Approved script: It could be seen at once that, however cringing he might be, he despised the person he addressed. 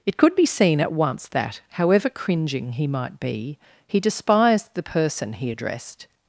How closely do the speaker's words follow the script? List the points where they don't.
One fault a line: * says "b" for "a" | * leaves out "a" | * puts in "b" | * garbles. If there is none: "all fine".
all fine